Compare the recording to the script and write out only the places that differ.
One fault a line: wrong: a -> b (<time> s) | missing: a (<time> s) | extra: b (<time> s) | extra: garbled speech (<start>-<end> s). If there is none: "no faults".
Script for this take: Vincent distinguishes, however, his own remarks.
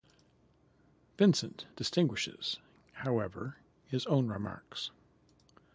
no faults